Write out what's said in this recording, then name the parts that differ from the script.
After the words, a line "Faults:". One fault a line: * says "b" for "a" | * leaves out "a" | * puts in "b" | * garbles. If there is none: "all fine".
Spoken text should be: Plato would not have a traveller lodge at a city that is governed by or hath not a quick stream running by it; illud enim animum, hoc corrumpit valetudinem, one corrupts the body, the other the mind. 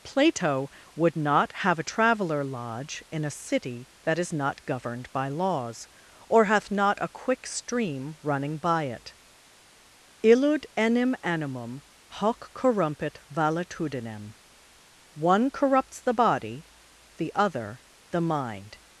Plato would not have a traveller lodge in a city that is not governed by laws, or hath not a quick stream running by it; illud enim animum, hoc corrumpit valetudinem, one corrupts the body, the other the mind.
Faults:
* says "in" for "at"
* puts in "not"
* puts in "laws"